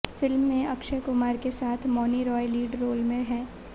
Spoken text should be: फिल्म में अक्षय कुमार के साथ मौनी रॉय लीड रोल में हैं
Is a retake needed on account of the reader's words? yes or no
no